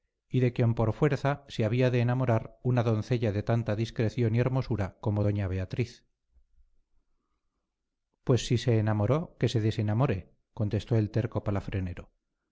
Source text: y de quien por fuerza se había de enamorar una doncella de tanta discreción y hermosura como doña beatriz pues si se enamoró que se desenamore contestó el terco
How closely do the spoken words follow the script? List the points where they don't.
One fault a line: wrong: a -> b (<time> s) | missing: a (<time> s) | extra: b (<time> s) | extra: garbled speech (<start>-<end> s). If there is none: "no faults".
no faults